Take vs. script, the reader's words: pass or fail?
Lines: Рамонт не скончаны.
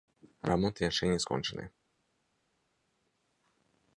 fail